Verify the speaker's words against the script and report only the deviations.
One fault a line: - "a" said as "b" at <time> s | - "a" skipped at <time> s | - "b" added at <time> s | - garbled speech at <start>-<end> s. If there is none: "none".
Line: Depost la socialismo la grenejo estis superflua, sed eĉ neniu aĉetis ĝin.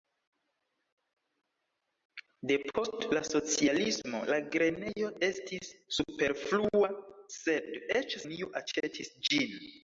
none